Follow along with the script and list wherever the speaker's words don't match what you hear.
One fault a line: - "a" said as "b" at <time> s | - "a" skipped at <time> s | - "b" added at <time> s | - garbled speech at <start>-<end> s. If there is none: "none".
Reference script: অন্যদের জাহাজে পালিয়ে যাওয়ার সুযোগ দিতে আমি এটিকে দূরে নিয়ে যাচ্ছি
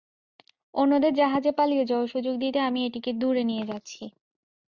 none